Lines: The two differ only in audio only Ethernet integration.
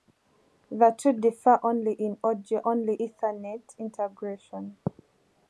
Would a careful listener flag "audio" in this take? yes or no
no